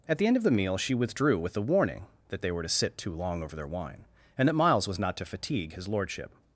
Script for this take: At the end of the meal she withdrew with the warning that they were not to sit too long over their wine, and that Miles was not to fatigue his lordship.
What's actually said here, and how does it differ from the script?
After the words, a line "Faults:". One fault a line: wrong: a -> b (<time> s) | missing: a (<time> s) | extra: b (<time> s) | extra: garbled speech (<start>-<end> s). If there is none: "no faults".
At the end of the meal she withdrew with the warning that they were to sit too long over their wine, and that Miles was not to fatigue his lordship.
Faults:
missing: not (2.6 s)